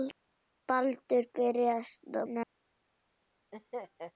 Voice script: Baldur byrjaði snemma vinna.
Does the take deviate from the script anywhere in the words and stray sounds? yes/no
yes